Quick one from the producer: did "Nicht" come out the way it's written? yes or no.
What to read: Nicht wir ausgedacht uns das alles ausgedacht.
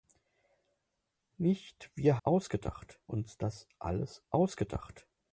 yes